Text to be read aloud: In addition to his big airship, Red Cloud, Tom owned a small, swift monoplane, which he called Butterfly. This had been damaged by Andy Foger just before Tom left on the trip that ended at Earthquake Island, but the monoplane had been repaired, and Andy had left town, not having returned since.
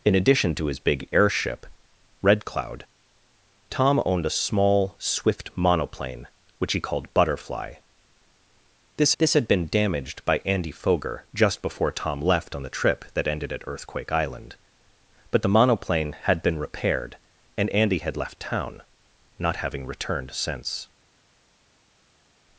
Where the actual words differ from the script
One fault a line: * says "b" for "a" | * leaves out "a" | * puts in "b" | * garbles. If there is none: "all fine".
* puts in "this"